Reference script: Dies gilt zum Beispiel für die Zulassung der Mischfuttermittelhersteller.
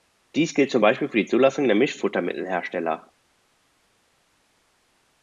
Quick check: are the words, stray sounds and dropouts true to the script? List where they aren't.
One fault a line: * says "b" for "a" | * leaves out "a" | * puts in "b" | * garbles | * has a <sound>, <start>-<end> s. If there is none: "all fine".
all fine